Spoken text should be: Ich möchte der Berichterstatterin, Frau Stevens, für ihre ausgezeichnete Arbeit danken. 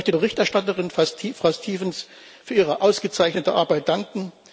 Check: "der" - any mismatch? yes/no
yes